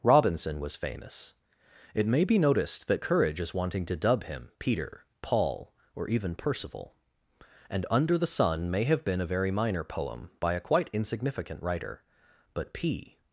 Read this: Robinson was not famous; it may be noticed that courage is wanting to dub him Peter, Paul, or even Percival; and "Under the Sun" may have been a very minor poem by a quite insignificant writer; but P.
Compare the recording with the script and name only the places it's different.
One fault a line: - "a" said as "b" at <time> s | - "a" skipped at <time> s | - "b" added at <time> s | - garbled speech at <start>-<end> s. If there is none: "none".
- "not" skipped at 0.8 s